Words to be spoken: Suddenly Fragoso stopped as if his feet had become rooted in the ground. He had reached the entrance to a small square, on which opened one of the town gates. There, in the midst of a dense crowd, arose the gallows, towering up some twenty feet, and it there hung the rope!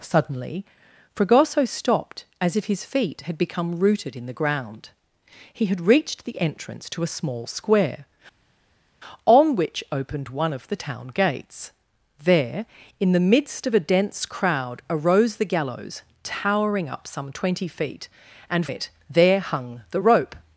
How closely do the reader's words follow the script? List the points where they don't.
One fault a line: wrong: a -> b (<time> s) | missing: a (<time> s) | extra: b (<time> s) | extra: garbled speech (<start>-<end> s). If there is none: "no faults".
no faults